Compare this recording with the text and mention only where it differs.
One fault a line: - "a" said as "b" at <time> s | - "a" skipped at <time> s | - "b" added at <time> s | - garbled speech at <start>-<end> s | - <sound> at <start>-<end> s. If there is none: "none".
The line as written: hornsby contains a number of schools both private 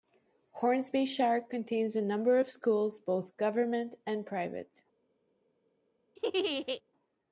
- "shire" added at 1.1 s
- "government and" added at 3.4 s
- laugh at 6.2-6.8 s